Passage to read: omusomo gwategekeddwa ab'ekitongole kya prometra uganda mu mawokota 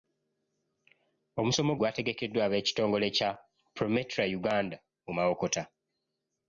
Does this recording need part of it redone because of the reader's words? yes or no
no